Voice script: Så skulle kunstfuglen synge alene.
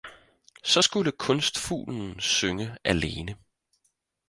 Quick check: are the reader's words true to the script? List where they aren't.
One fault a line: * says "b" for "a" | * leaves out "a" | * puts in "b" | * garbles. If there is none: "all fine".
all fine